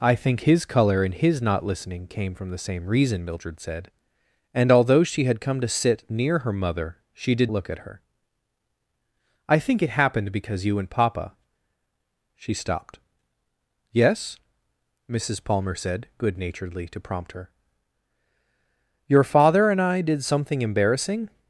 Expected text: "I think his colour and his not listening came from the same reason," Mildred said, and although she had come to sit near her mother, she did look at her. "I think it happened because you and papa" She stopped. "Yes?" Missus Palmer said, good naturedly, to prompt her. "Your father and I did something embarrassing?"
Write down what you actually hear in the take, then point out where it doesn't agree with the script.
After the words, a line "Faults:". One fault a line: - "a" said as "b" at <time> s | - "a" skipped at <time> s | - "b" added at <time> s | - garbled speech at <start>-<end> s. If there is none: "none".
"I think his colour and his not listening came from the same reason," Mildred said, and although she had come to sit near her mother, she did look at her. "I think it happened because you and papa" She stopped. "Yes?" Missus Palmer said, good naturedly, to prompt her. "Your father and I did something embarrassing?"
Faults:
none